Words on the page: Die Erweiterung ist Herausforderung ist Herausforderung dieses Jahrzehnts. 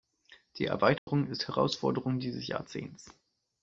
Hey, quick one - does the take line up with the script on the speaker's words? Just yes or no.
no